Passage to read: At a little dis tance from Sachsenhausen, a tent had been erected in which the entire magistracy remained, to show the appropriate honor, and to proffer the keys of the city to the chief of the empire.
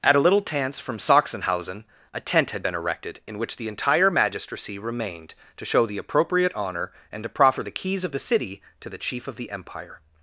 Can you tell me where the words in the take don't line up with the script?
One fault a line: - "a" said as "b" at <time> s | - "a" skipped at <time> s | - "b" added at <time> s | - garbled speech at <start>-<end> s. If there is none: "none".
- "dis" skipped at 0.4 s